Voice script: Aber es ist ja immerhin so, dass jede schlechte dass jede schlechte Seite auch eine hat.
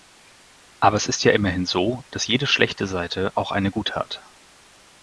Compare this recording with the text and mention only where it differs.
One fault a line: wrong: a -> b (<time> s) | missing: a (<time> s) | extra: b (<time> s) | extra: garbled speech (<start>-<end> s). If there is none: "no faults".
missing: dass jede schlechte (2.9 s)
extra: gute (3.7 s)